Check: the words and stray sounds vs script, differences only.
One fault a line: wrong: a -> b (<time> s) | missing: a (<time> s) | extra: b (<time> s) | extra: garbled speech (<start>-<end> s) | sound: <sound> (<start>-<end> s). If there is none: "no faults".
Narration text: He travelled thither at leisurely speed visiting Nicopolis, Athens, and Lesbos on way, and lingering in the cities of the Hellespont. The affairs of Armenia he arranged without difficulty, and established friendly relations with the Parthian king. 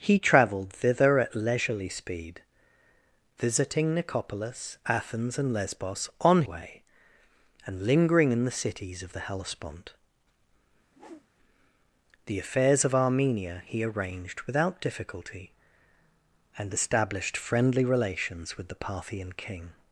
sound: whoosh (10.9-11.3 s)